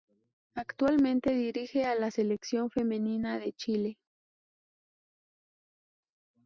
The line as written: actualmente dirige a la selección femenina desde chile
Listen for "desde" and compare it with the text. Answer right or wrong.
wrong